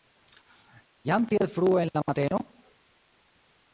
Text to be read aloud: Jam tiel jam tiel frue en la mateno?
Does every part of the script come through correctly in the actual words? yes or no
no